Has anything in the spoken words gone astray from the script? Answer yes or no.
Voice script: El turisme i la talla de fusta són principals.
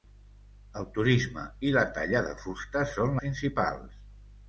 no